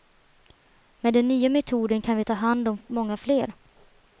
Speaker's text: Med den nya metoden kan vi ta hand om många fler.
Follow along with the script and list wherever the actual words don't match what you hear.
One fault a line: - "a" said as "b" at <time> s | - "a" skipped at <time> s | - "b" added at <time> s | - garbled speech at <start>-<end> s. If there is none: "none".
none